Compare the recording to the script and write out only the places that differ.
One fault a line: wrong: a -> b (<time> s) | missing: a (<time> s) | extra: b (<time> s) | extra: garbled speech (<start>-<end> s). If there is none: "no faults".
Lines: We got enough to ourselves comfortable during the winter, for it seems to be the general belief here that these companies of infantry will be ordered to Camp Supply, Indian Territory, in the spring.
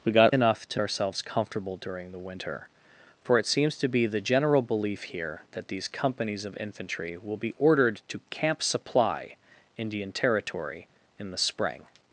no faults